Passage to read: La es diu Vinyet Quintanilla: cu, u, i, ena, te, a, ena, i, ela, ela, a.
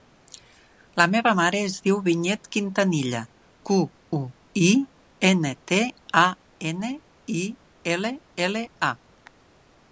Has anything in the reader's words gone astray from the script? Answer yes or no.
yes